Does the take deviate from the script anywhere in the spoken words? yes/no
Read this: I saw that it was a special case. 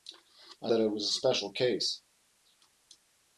yes